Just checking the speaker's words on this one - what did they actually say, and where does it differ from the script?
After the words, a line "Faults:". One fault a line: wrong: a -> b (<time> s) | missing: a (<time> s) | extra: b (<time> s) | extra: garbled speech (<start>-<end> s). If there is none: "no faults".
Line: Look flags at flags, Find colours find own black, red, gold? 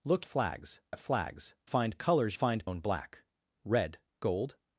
Look flags at flags, Find colours find own black, red, gold?
Faults:
no faults